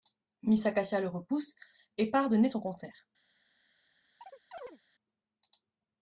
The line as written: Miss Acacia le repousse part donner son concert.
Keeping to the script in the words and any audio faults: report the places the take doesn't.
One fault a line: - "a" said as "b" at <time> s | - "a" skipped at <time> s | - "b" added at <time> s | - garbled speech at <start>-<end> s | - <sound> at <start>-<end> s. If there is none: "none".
- "et" added at 2.0 s
- chirp at 4.2-4.8 s